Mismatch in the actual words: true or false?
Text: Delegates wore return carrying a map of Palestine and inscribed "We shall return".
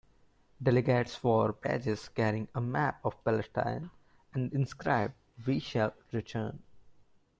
true